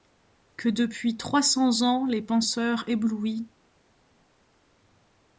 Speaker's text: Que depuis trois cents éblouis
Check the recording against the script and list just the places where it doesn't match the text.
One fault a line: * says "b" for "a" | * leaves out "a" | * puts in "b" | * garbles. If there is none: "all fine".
* puts in "ans les penseurs"